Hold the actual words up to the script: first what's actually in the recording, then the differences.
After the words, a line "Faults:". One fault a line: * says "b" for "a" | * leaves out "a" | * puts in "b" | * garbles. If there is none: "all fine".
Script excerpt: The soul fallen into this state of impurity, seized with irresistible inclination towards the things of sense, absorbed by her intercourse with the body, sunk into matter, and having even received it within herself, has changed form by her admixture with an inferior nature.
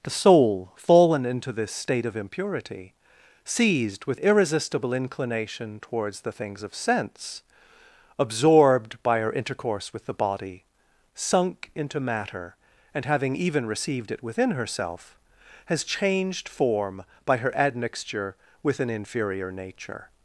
The soul fallen into this state of impurity, seized with irresistible inclination towards the things of sense, absorbed by her intercourse with the body, sunk into matter, and having even received it within herself, has changed form by her admixture with an inferior nature.
Faults:
all fine